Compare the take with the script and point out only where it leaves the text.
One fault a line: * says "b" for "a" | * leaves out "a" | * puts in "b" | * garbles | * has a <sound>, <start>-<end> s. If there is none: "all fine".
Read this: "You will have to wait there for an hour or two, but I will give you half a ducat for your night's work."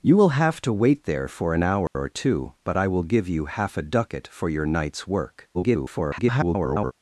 * has a dropout, 1.9-1.9 s
* garbles